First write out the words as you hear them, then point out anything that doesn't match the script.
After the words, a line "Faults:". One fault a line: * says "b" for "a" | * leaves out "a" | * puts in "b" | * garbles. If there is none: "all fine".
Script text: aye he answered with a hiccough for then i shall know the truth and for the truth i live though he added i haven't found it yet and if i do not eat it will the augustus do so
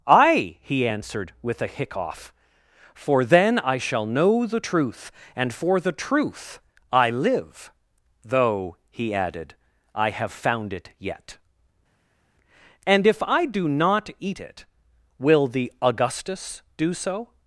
aye he answered with a hiccough for then i shall know the truth and for the truth i live though he added i have found it yet and if i do not eat it will the augustus do so
Faults:
* says "have" for "haven't"